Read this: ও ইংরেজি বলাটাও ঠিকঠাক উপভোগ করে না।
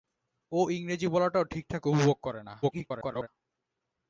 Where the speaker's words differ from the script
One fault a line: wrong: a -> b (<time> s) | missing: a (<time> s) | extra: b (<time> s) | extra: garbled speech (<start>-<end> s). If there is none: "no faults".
extra: garbled speech (2.6-3.3 s)